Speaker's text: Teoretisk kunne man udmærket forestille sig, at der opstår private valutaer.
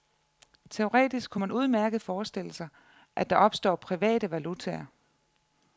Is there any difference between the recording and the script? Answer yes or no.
no